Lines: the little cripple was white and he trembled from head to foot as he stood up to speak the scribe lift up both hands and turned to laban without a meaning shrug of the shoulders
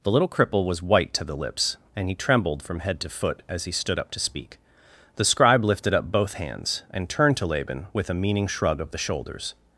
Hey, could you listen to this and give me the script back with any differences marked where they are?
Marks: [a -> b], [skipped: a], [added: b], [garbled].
the little cripple was white [added: to the lips] and he trembled from head to foot as he stood up to speak the scribe [lift -> lifted] up both hands and turned to laban [without -> with] a meaning shrug of the shoulders